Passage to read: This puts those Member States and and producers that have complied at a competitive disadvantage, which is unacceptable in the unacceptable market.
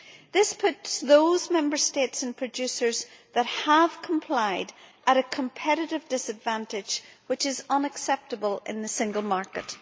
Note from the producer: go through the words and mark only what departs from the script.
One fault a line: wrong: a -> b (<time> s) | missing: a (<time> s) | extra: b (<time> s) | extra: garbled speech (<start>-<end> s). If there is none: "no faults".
missing: and (2.4 s)
wrong: unacceptable -> single (8.9 s)